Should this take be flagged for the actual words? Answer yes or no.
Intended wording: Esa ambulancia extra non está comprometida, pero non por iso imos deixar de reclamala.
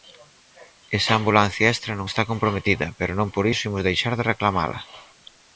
no